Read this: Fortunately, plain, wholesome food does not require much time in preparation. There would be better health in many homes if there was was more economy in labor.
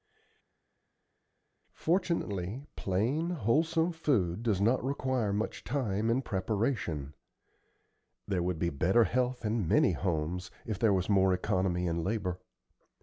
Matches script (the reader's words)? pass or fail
fail